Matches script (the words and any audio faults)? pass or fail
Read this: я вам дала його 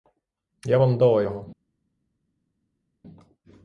pass